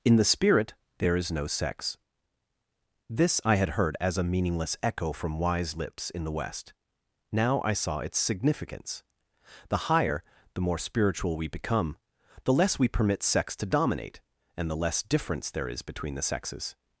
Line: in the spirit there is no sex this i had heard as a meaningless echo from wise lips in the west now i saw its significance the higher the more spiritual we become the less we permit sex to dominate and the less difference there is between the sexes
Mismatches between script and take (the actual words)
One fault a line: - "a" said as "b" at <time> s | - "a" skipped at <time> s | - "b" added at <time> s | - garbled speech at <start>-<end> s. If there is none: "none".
none